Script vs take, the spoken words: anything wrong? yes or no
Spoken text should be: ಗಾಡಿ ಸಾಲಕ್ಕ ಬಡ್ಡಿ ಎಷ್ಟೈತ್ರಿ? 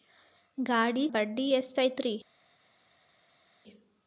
yes